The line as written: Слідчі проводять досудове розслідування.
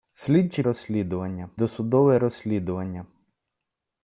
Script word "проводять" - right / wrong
wrong